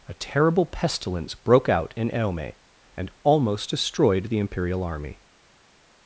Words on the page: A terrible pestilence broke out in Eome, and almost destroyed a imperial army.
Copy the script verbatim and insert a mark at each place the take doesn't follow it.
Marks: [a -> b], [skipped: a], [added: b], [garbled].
A terrible pestilence broke out in Eome, and almost destroyed [a -> the] imperial army.